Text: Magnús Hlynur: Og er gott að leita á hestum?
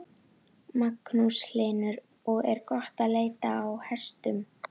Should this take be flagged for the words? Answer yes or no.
no